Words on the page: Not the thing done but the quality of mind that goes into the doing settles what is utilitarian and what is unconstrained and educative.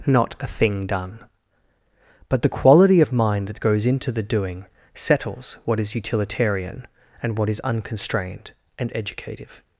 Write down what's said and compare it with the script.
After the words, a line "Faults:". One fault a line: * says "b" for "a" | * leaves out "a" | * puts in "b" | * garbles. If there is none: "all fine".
Not a thing done but the quality of mind that goes into the doing settles what is utilitarian and what is unconstrained and educative.
Faults:
* says "a" for "the"